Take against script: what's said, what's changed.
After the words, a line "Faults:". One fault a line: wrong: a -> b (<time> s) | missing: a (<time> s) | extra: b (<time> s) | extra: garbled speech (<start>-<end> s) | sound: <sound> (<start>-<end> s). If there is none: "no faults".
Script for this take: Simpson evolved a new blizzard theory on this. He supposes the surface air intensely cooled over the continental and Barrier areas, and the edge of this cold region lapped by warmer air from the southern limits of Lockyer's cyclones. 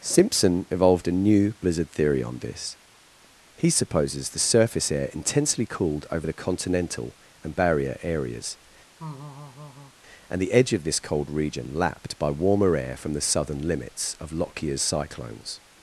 Simpson evolved a new blizzard theory on this. He supposes the surface air intensely cooled over the continental and Barrier areas, and the edge of this cold region lapped by warmer air from the southern limits of Lockyer's cyclones.
Faults:
sound: laugh (9.0-9.9 s)